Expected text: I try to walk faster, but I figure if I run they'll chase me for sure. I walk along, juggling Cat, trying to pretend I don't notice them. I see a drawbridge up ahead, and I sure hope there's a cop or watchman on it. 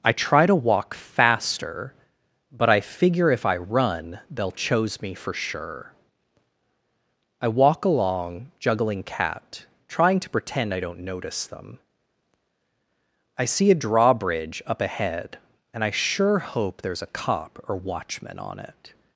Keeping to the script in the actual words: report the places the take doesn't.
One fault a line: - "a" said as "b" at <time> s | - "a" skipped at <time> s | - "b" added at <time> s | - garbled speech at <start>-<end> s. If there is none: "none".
- "chase" said as "chose" at 4.5 s